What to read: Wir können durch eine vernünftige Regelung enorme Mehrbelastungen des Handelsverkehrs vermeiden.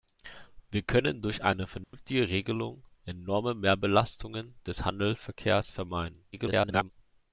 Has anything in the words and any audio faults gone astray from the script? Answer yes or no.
yes